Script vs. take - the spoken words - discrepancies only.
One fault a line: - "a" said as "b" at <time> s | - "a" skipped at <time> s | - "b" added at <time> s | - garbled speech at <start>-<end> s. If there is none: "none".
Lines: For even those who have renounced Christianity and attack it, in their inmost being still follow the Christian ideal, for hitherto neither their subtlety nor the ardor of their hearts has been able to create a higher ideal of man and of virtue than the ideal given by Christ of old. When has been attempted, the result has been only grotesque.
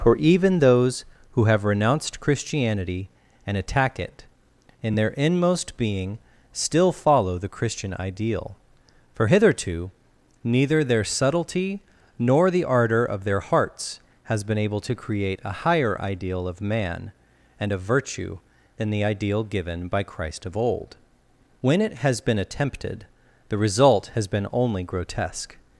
- "it" added at 21.8 s